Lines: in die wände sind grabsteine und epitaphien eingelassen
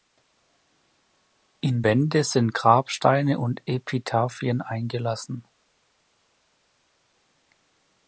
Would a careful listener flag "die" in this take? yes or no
yes